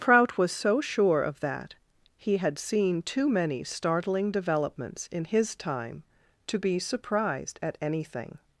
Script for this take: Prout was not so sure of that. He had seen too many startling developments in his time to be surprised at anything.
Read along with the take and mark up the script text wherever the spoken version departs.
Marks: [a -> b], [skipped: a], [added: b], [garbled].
Prout was [skipped: not] so sure of that. He had seen too many startling developments in his time to be surprised at anything.